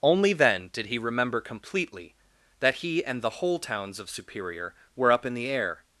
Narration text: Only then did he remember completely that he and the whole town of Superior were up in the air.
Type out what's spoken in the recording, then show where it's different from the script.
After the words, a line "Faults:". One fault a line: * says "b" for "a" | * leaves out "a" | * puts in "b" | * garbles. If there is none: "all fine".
Only then did he remember completely that he and the whole towns of Superior were up in the air.
Faults:
* says "towns" for "town"